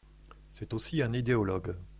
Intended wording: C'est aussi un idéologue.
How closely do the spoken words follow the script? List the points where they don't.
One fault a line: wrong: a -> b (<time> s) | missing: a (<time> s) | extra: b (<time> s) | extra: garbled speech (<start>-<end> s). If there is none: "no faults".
no faults